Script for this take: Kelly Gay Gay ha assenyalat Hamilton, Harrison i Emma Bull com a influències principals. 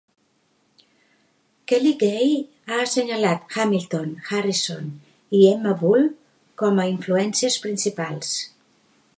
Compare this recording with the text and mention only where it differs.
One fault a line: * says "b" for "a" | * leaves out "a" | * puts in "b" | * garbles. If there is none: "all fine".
* leaves out "Gay"